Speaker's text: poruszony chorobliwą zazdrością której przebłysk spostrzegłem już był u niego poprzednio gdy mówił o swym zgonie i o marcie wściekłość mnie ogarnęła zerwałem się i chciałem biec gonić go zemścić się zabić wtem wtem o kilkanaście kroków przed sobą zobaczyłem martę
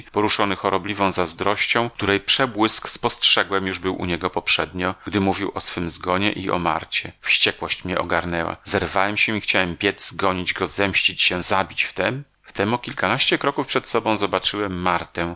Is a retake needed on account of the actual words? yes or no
no